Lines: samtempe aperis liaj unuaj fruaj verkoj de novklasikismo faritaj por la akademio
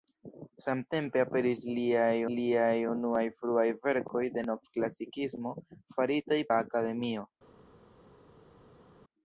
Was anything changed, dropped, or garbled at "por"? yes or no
yes